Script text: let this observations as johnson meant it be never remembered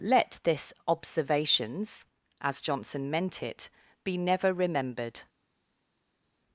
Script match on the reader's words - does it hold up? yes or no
yes